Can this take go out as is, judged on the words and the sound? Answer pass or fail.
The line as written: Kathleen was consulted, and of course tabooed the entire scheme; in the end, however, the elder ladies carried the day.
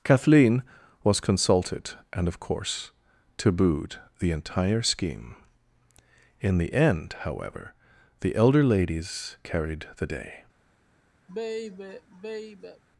fail